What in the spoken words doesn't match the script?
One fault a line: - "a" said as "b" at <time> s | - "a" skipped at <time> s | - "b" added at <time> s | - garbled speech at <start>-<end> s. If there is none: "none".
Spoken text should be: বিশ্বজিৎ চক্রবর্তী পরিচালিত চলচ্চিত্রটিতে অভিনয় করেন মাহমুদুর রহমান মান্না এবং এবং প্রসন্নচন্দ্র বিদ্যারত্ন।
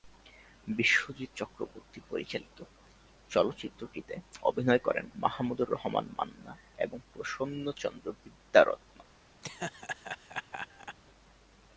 - "এবং" skipped at 7.0 s